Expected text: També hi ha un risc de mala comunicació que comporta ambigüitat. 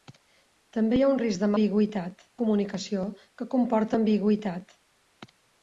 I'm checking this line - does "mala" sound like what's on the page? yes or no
no